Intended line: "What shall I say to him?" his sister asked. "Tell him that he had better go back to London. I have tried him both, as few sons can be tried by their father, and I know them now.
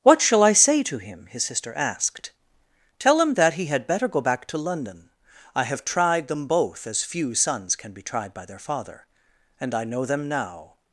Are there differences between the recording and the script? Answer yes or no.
yes